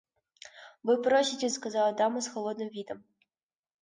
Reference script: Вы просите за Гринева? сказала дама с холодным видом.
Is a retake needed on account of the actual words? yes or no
yes